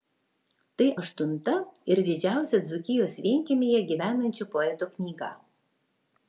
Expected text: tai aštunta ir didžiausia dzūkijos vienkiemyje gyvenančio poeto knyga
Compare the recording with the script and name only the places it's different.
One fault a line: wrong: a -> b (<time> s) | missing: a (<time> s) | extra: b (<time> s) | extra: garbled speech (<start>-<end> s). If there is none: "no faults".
no faults